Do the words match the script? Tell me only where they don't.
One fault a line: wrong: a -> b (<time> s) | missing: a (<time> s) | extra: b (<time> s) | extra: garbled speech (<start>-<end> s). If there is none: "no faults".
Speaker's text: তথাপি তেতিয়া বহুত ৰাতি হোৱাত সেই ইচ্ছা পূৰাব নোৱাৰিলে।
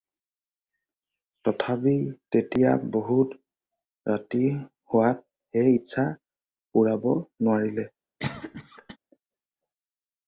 no faults